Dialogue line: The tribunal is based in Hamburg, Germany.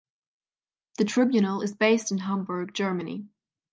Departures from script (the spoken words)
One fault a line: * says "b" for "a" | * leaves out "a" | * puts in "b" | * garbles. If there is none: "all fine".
all fine